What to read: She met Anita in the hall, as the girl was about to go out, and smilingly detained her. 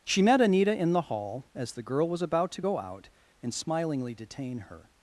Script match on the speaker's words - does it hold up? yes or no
no